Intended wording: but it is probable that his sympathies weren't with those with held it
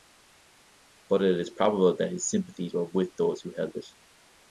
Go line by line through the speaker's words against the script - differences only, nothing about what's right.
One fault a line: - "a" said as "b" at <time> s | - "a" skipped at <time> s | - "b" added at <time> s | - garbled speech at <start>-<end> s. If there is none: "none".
- "weren't" said as "were" at 2.7 s
- "with" said as "who" at 3.4 s